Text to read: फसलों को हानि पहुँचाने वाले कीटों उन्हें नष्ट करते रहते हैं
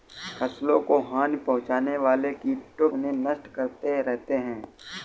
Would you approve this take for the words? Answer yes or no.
yes